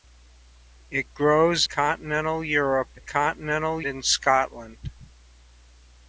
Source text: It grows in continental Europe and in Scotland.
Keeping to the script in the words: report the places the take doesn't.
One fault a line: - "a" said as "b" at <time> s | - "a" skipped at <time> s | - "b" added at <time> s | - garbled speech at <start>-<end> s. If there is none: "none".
- "in" skipped at 1.7 s
- "and" said as "continental" at 3.0 s